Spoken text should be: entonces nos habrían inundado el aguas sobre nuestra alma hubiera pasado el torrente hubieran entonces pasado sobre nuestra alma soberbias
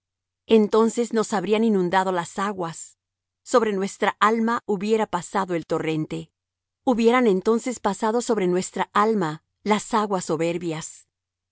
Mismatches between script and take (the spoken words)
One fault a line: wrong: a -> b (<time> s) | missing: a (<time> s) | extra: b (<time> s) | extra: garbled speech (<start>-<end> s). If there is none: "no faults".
wrong: el -> las (2.1 s)
extra: las aguas (9.6 s)